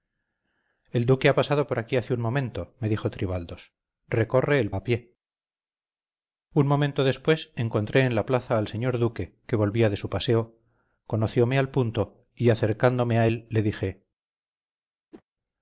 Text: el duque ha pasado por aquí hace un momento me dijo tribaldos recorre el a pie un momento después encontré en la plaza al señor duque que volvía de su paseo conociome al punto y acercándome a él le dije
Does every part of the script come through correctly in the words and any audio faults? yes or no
no